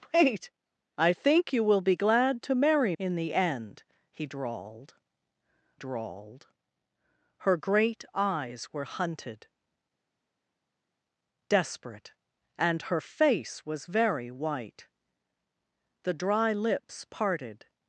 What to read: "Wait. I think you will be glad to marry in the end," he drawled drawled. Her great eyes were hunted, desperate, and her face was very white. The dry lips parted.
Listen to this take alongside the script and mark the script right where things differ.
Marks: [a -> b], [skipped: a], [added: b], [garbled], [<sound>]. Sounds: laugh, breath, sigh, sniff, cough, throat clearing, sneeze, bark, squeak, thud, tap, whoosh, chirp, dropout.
"Wait. I think you will be glad to marry in the end," he drawled drawled. Her great eyes were hunted, desperate, and her face was very white. The dry lips parted.